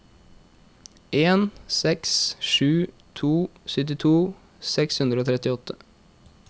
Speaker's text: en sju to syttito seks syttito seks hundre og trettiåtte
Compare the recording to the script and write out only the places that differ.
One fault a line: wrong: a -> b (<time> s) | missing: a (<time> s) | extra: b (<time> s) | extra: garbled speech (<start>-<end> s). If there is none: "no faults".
extra: seks (1.8 s)
missing: syttito seks (5.0 s)